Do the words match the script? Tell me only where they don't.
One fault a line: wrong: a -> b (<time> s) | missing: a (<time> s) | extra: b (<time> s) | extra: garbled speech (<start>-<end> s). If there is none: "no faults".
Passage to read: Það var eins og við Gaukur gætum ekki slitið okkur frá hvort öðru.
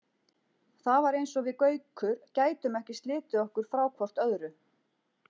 no faults